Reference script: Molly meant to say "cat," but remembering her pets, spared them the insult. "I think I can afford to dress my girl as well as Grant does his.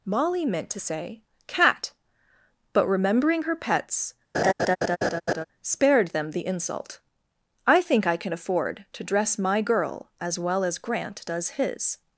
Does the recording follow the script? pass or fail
pass